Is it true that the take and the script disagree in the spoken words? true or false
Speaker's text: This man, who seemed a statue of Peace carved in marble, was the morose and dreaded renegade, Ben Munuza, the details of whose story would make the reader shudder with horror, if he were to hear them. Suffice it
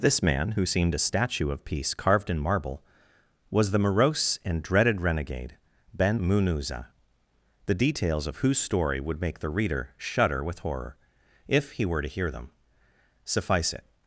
false